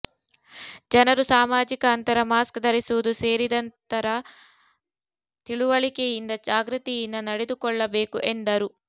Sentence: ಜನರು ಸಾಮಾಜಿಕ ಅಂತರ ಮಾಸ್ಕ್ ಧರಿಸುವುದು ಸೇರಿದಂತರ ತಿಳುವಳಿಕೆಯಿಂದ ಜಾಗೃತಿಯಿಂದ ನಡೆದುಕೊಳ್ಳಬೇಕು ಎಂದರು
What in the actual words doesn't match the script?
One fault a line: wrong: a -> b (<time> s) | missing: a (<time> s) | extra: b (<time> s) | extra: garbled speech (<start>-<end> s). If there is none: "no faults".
no faults